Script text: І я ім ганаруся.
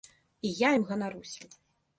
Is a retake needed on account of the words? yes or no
no